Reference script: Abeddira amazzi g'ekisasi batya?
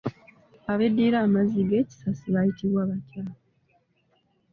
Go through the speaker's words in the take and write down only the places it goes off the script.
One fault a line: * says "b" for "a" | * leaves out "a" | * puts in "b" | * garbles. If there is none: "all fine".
* puts in "bayitibwa"